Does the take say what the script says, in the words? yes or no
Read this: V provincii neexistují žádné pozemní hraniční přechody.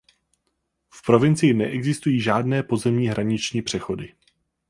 yes